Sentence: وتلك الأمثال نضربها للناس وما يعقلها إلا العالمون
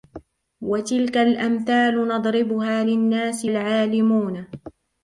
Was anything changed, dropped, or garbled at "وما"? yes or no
yes